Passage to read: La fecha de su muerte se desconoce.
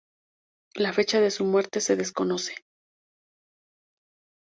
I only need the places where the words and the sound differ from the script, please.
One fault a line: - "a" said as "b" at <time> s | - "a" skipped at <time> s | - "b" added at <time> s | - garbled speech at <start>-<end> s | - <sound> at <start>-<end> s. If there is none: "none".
none